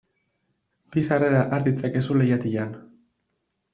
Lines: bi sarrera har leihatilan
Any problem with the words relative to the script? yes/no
yes